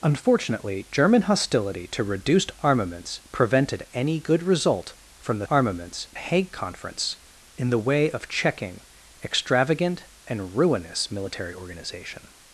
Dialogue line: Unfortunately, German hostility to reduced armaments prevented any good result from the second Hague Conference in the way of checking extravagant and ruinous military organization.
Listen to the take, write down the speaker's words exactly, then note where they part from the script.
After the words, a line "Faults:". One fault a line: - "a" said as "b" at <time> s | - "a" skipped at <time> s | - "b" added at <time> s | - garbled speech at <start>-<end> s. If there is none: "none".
Unfortunately, German hostility to reduced armaments prevented any good result from the armaments Hague Conference in the way of checking extravagant and ruinous military organization.
Faults:
- "second" said as "armaments" at 5.5 s